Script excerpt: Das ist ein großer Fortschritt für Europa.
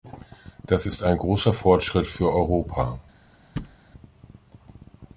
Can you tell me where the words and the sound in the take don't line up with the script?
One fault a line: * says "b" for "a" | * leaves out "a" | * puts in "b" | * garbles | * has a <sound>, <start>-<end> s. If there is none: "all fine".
* has a thud, 3.6-3.8 s